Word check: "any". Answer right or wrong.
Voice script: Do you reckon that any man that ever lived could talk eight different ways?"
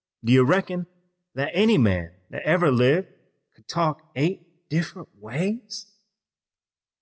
right